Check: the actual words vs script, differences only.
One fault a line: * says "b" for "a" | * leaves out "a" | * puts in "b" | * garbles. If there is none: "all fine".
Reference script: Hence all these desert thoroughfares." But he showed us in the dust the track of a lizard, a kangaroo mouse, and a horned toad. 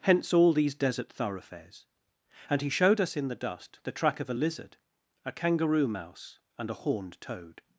* says "And" for "But"